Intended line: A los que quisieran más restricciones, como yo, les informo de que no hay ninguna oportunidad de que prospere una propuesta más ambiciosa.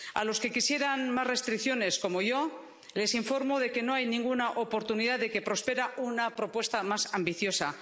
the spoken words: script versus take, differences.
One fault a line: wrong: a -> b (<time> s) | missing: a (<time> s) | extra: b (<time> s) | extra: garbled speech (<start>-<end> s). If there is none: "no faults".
no faults